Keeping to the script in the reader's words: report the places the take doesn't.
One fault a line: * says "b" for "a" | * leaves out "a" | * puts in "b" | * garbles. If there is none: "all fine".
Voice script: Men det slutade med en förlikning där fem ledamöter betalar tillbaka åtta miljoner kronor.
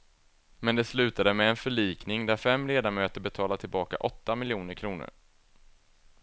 all fine